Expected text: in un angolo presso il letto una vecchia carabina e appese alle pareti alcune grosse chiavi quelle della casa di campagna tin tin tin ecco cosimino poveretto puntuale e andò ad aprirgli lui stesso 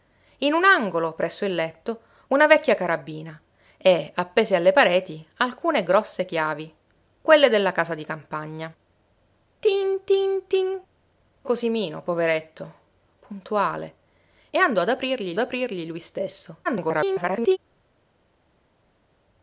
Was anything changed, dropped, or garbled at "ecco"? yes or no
yes